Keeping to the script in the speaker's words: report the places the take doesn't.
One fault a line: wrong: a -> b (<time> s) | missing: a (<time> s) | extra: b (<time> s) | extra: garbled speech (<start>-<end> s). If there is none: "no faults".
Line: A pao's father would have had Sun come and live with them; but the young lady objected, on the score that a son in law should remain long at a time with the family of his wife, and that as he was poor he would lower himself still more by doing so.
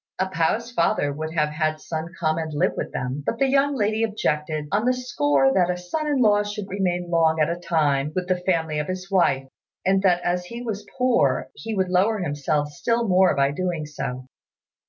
no faults